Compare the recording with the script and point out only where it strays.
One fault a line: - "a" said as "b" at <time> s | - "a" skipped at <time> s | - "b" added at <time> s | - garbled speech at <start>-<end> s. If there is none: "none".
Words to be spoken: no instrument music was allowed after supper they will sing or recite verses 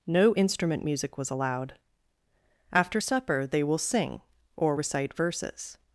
none